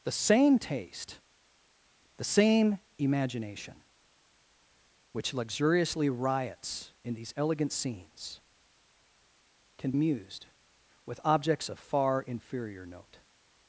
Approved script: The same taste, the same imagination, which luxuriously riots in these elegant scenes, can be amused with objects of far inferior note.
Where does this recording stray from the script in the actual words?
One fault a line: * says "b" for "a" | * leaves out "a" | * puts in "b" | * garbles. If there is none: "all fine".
* leaves out "be"